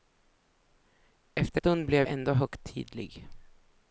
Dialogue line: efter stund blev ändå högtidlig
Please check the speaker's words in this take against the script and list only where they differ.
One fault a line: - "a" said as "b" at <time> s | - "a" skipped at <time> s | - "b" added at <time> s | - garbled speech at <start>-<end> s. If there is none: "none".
none